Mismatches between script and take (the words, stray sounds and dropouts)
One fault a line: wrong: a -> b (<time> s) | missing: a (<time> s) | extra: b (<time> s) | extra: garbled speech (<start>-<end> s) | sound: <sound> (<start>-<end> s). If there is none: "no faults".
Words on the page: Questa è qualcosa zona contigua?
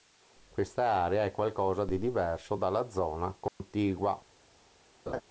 extra: area (0.8 s)
extra: di diverso dalla (1.9 s)
sound: dropout (3.5-3.6 s)
sound: laugh (5.1-5.2 s)